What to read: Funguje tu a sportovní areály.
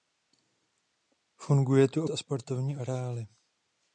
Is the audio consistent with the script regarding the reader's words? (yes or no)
yes